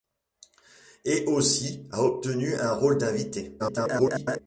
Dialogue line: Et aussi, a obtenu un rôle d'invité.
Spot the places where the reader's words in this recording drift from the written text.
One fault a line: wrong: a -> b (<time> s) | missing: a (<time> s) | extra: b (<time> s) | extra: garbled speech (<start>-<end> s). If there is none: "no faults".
extra: garbled speech (3.6-4.4 s)